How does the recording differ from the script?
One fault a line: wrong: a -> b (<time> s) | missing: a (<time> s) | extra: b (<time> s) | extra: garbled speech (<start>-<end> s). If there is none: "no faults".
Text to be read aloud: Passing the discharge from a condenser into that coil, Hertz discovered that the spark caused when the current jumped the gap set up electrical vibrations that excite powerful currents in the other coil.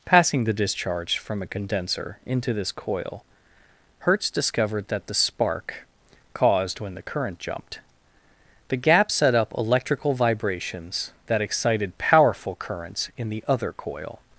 wrong: that -> this (2.5 s)
wrong: excite -> excited (11.4 s)